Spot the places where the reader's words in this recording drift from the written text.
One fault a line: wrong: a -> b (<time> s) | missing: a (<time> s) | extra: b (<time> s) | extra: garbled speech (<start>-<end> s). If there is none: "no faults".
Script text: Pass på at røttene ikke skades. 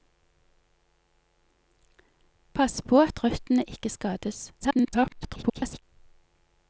extra: garbled speech (4.6-5.8 s)